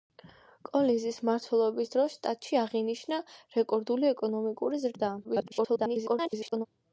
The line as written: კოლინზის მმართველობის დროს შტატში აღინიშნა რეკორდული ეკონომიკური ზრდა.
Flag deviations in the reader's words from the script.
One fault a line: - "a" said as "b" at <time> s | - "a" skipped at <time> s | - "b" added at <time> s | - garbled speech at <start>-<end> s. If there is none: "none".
- garbled speech at 5.2-6.7 s